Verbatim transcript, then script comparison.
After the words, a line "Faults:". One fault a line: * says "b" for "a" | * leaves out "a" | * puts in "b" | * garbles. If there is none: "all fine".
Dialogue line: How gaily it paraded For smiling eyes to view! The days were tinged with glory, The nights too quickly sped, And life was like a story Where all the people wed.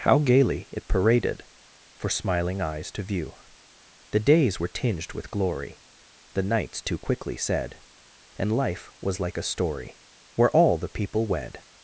How gaily it paraded For smiling eyes to view! The days were tinged with glory, The nights too quickly said, And life was like a story Where all the people wed.
Faults:
* says "said" for "sped"